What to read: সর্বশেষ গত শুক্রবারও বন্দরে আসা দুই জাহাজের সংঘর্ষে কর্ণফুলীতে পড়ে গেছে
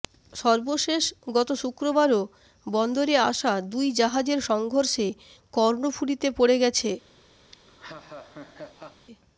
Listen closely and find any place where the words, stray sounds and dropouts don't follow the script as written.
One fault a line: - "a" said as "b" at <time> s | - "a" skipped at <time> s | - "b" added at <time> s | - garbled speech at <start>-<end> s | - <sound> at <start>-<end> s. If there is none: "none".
- laugh at 7.5-9.1 s